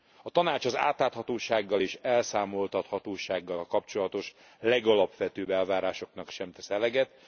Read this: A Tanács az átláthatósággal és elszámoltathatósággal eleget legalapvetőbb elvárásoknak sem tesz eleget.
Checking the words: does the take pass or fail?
fail